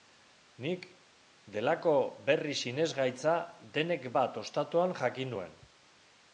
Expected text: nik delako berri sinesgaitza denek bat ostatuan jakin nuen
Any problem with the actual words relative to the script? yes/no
no